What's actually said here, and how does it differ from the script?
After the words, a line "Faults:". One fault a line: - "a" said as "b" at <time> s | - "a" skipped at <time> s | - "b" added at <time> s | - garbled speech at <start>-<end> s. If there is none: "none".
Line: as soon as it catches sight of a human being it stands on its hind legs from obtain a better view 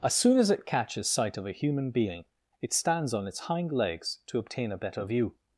as soon as it catches sight of a human being it stands on its hind legs to obtain a better view
Faults:
- "from" said as "to" at 4.3 s